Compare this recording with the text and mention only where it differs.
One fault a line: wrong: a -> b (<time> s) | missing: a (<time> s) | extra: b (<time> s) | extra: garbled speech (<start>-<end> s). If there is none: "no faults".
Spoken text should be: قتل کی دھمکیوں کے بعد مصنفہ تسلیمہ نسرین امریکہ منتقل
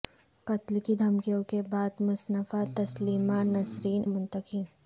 missing: امریکہ (4.0 s)